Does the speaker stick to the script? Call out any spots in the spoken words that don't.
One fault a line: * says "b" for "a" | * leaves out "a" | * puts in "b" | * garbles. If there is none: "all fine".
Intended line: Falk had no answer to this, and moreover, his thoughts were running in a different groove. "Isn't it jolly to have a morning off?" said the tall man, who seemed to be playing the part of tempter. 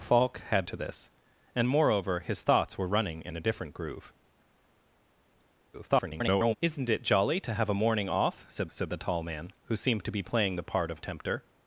* leaves out "no answer"
* garbles
* puts in "said"